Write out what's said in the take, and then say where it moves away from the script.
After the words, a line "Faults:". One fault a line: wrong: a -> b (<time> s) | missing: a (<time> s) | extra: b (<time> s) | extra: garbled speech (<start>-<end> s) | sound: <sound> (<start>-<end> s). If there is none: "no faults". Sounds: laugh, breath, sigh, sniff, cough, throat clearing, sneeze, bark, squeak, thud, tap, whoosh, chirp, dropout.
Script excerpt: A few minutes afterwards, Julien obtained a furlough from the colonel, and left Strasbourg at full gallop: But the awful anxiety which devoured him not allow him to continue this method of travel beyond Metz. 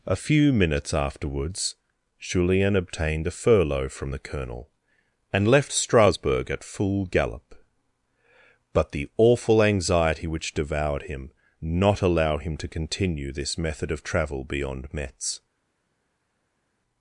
A few minutes afterwards, Julien obtained a furlough from the colonel, and left Strasbourg at full gallop: But the awful anxiety which devoured him not allow him to continue this method of travel beyond Metz.
Faults:
no faults